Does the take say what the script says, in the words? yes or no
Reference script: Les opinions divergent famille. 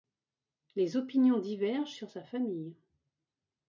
no